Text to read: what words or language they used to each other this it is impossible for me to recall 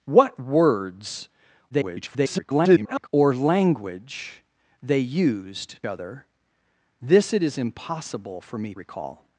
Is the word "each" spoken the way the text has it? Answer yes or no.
no